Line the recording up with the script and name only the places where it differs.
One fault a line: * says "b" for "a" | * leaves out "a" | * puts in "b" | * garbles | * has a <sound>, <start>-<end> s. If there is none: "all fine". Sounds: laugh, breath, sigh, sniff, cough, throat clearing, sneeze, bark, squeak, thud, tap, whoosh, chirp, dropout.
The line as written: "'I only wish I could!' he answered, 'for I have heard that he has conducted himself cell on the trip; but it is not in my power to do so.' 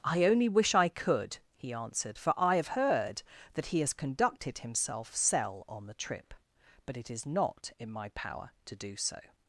all fine